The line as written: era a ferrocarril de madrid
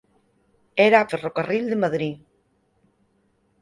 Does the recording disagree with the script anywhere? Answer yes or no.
no